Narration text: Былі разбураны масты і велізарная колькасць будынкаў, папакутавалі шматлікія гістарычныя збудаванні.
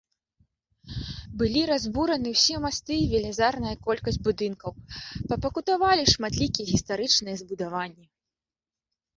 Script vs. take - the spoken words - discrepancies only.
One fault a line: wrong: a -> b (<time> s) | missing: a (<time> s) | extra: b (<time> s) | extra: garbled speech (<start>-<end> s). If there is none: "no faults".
extra: ўсе (2.4 s)